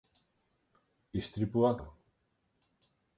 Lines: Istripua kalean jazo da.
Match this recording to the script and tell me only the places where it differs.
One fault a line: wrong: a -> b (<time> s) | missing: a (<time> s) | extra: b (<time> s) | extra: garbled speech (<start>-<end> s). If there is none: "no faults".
missing: kalean jazo (1.7 s)